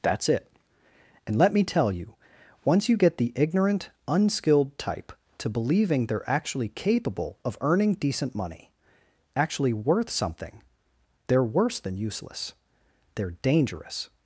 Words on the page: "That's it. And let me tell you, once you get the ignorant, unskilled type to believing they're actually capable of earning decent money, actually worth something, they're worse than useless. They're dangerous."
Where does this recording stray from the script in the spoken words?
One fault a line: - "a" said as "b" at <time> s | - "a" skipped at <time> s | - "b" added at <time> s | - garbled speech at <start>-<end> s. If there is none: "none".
none